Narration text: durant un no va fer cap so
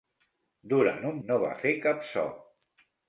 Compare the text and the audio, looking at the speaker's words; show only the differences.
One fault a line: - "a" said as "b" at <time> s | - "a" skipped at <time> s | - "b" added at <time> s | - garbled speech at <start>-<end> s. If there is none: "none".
none